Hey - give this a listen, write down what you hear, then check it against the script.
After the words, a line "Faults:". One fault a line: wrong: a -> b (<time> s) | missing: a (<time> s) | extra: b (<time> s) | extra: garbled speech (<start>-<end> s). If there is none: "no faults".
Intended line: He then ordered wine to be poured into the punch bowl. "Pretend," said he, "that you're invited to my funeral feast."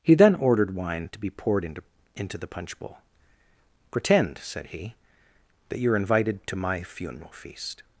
He then ordered wine to be poured into into the punch bowl. "Pretend," said he, "that you're invited to my funeral feast."
Faults:
extra: into (2.1 s)